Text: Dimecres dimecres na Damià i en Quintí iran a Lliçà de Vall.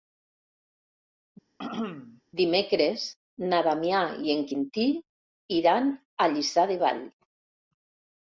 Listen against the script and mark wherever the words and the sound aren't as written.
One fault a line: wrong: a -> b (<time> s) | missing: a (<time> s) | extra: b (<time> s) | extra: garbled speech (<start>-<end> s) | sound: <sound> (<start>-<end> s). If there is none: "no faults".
sound: throat clearing (1.6-2.2 s)
missing: dimecres (3.0 s)